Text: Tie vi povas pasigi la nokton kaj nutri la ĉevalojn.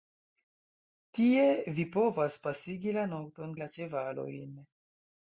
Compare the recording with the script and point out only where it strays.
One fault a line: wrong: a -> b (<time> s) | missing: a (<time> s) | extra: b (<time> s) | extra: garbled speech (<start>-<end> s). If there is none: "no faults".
missing: kaj nutri (3.5 s)